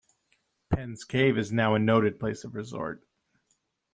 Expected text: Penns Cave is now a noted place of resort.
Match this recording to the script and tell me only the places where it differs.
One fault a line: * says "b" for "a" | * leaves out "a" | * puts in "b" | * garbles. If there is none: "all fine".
all fine